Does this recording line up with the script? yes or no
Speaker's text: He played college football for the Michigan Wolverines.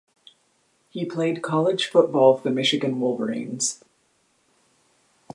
no